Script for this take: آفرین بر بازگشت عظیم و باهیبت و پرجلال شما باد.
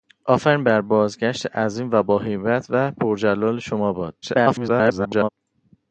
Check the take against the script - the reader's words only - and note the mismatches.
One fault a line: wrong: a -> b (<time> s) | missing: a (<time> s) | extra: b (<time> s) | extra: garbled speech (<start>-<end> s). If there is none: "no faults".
extra: garbled speech (4.2-5.3 s)